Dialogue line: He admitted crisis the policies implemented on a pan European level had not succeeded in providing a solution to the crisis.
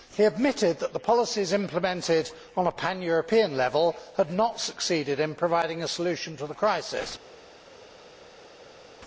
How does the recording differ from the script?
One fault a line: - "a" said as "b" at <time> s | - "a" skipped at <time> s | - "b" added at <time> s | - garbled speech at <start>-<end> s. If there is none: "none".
- "crisis" said as "that" at 0.8 s